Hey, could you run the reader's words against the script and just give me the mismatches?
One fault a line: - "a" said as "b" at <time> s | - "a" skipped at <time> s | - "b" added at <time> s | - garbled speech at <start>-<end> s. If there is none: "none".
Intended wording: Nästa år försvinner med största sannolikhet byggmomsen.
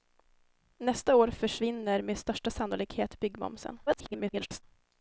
- garbled speech at 3.9-4.6 s